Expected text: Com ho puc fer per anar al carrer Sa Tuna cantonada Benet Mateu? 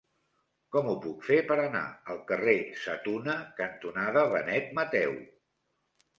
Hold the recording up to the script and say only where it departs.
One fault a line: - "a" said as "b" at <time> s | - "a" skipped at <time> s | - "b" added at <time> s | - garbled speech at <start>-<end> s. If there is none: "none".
none